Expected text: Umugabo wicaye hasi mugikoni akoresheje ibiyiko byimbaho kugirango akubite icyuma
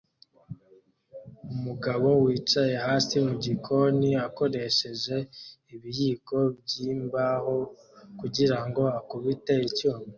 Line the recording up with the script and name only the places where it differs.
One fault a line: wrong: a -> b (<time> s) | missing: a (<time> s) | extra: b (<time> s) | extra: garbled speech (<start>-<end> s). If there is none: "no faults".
no faults